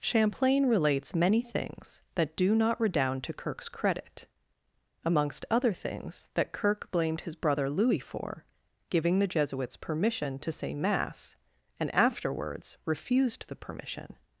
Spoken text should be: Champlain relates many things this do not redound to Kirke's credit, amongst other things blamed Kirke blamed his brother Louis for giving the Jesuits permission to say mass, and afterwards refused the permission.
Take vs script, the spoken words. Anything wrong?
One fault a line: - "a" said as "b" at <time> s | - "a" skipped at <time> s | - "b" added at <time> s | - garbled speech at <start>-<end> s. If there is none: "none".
- "this" said as "that" at 2.1 s
- "blamed" said as "that" at 6.3 s